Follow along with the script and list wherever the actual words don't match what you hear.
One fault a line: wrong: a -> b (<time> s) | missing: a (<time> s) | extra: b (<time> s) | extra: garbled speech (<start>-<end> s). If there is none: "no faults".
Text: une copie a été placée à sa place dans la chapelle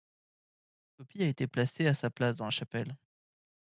no faults